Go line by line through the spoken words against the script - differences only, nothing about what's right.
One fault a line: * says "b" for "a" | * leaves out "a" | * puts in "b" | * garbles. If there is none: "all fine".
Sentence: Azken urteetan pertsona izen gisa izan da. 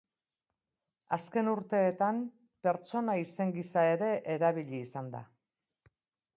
* puts in "ere erabili"